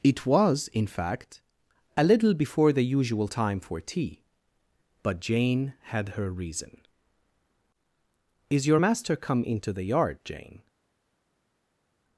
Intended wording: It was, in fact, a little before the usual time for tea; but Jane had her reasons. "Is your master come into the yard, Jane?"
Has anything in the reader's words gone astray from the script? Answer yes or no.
yes